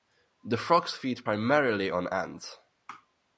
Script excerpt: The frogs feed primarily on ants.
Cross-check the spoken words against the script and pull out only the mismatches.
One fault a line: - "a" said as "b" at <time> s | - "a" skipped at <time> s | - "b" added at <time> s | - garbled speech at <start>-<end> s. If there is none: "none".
none